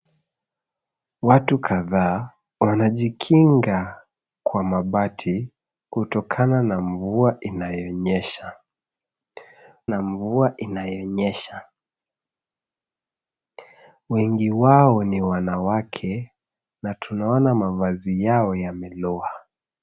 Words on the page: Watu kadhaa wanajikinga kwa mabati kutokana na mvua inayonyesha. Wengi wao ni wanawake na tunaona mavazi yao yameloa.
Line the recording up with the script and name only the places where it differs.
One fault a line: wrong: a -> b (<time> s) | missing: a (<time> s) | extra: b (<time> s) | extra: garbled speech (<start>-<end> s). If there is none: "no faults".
extra: na mvua inayonyesha (9.9 s)